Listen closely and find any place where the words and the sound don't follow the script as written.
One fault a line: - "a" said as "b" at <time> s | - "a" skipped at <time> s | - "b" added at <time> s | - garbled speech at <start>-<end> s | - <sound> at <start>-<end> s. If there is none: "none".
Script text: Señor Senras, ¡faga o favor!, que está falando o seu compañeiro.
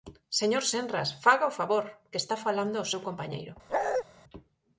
- bark at 3.7-4.0 s